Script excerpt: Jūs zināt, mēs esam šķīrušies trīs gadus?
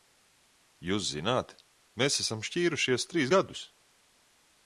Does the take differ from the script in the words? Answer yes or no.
no